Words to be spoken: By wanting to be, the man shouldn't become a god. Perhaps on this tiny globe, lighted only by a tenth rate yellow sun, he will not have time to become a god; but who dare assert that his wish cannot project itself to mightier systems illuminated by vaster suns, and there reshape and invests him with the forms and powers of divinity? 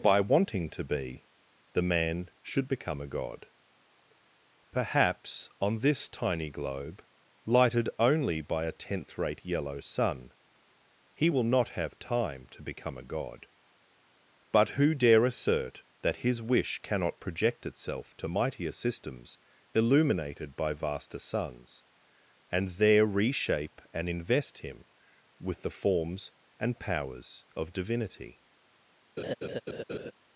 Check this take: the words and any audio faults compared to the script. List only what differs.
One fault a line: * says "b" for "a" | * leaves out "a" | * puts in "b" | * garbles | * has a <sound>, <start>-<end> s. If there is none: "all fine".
* says "should" for "shouldn't"
* says "invest" for "invests"
* has a laugh, 29.2-30.1 s